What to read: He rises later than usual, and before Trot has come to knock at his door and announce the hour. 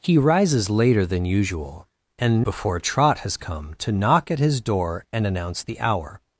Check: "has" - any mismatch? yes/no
no